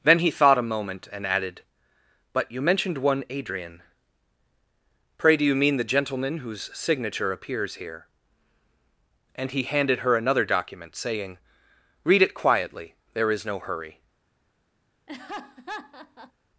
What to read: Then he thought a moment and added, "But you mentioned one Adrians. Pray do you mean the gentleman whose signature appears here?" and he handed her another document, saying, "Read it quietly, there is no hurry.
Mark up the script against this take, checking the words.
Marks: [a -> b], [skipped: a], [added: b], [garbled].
Then he thought a moment and added, "But you mentioned one [Adrians. -> Adrian] Pray do you mean the gentleman whose signature appears here?" and he handed her another document, saying, "Read it quietly, there is no hurry.